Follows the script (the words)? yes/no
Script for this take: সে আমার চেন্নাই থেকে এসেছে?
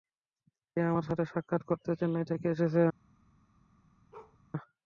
no